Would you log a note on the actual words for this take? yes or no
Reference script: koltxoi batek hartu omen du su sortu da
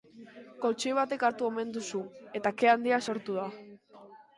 yes